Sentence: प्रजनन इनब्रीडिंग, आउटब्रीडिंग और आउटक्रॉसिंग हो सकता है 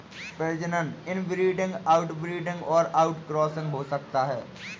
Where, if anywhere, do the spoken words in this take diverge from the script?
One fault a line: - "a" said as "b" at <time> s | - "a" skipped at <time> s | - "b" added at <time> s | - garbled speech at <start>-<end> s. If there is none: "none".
none